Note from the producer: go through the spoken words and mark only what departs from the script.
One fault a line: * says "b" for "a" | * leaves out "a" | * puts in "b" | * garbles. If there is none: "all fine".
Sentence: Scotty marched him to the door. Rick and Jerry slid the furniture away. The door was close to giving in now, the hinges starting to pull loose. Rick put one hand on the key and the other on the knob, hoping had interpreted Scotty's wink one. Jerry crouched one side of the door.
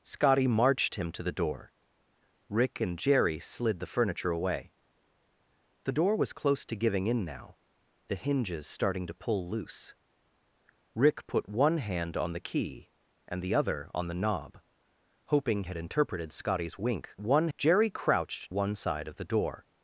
all fine